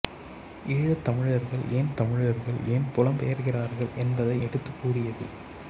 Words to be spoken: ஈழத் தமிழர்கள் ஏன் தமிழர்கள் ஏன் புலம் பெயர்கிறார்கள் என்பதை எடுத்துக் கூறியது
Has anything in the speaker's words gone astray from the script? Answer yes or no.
no